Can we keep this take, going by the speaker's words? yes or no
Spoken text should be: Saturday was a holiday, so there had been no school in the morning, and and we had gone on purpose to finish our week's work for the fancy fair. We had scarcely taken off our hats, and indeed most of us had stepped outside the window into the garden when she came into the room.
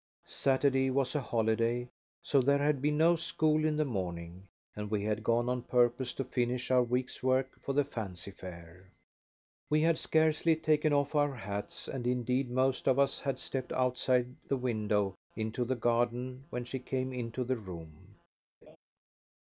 no